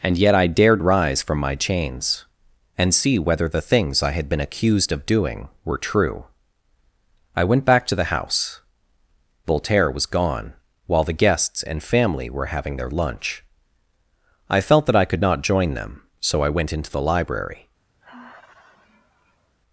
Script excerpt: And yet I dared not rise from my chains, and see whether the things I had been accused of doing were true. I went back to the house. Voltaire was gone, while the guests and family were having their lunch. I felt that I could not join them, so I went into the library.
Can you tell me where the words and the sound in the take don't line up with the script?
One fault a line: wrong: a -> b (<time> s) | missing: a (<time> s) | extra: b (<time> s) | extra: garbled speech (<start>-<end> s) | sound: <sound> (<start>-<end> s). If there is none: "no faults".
missing: not (0.8 s)
sound: sigh (18.0-19.6 s)